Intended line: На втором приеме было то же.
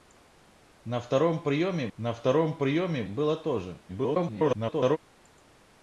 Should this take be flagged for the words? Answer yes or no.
yes